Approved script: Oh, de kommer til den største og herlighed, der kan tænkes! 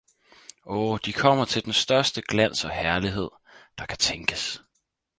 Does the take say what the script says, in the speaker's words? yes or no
no